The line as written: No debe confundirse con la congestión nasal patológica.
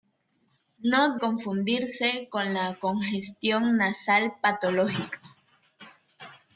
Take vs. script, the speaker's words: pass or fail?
fail